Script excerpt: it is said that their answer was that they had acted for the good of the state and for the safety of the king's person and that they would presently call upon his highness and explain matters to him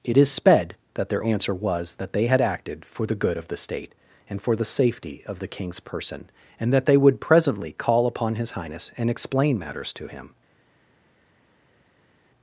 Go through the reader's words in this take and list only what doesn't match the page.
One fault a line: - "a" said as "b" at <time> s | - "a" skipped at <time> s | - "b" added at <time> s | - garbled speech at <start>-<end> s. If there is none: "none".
- "said" said as "sped" at 0.3 s